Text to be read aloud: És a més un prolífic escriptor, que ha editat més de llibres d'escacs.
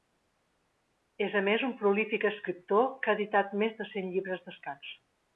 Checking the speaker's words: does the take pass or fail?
fail